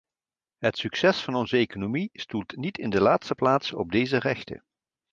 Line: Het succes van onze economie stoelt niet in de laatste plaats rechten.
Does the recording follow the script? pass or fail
fail